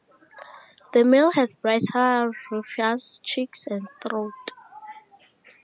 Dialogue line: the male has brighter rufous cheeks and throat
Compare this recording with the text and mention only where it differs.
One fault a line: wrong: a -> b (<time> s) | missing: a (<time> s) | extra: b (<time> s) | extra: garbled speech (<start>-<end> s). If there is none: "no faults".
no faults